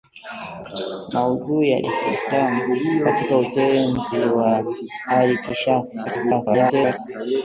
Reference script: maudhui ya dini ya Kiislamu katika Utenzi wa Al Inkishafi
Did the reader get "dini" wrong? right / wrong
wrong